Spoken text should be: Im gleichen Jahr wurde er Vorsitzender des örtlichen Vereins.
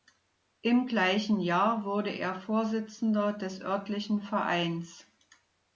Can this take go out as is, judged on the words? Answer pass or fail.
pass